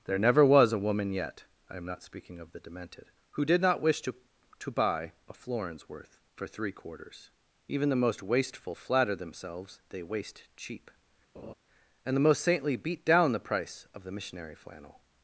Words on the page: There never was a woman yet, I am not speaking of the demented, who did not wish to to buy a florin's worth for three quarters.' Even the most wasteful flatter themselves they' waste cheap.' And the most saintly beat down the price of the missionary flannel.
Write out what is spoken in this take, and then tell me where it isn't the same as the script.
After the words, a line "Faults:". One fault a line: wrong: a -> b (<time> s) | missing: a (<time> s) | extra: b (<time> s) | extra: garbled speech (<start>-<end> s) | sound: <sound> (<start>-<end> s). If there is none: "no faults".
There never was a woman yet, I am not speaking of the demented, who did not wish to to buy a florin's worth for three quarters.' Even the most wasteful flatter themselves they' waste cheap.' And the most saintly beat down the price of the missionary flannel.
Faults:
sound: laugh (11.3-11.5 s)